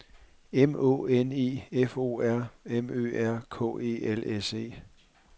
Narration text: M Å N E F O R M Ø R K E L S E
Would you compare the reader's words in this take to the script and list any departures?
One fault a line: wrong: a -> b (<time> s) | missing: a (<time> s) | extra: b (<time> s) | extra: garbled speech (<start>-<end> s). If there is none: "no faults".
no faults